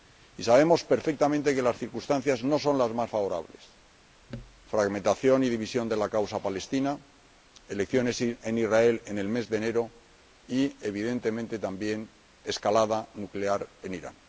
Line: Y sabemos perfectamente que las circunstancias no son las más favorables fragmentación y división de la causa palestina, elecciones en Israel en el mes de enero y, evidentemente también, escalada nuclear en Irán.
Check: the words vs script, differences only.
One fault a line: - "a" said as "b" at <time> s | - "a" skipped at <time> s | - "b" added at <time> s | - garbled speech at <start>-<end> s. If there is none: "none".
none